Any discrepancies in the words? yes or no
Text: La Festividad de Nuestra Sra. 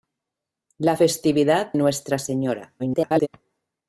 yes